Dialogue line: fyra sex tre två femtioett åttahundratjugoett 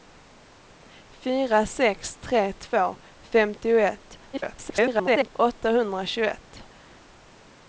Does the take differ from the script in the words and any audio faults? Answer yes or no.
yes